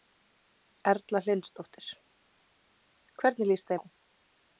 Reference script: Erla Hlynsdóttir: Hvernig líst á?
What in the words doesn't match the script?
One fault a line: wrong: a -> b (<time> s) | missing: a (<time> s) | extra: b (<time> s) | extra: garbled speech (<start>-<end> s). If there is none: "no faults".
no faults